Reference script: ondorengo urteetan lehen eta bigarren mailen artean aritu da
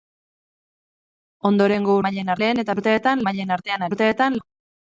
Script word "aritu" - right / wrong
wrong